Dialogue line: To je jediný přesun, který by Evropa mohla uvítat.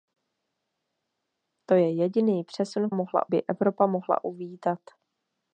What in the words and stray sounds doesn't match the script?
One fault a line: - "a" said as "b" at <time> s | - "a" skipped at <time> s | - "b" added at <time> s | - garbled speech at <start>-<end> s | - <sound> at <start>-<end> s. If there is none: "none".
- "který" said as "mohla" at 2.9 s